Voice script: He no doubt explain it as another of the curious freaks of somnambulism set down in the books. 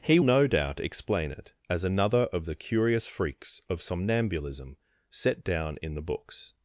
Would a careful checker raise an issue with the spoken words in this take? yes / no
no